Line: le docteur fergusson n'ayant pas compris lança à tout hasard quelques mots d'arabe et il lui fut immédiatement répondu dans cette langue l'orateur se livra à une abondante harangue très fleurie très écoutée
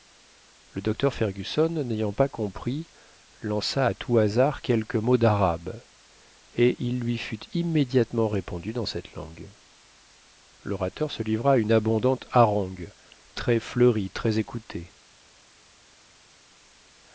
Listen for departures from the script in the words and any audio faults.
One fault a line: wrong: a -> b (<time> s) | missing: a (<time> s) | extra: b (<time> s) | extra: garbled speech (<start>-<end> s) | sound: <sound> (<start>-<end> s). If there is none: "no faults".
no faults